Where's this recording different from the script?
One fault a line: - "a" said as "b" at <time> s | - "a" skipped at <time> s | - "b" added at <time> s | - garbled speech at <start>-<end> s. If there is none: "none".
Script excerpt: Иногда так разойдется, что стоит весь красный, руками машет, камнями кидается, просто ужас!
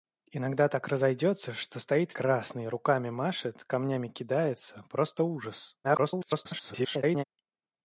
- "весь" skipped at 2.2 s
- garbled speech at 5.8-7.2 s